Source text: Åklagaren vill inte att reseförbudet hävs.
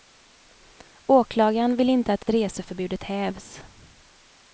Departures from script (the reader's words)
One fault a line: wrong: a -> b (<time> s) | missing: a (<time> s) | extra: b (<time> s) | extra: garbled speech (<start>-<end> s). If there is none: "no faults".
extra: att (2.2 s)